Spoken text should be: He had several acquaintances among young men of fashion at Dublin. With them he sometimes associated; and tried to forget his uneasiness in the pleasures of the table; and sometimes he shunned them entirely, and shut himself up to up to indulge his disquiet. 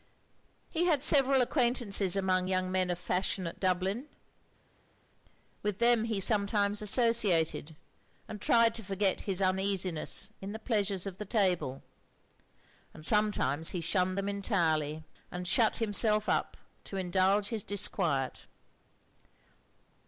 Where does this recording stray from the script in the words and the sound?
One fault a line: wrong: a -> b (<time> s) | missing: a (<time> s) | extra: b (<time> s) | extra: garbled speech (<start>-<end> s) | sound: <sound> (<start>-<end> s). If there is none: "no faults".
missing: up to (17.0 s)